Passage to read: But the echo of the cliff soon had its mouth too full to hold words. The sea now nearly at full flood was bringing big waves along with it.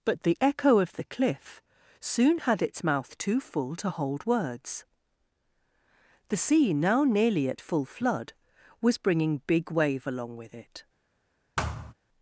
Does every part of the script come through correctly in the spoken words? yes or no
no